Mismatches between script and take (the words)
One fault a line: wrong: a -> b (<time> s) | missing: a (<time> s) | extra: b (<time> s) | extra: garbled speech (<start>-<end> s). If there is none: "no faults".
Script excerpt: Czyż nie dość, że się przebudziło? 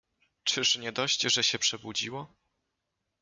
no faults